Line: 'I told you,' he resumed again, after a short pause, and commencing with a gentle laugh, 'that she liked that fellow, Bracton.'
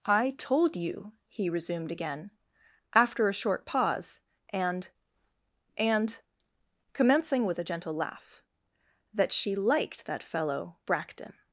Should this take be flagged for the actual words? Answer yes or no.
yes